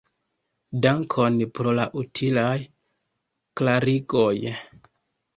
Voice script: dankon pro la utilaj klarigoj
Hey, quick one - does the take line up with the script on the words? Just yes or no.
yes